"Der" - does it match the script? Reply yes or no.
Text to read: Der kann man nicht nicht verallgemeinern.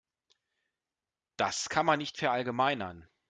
no